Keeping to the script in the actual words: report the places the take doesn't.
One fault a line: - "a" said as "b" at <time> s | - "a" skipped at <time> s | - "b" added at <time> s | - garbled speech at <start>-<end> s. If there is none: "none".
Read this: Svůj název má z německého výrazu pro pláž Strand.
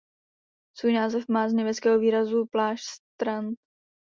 - "pro" skipped at 2.5 s